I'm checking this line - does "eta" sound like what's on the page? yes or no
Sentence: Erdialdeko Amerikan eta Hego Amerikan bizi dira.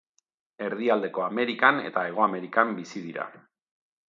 yes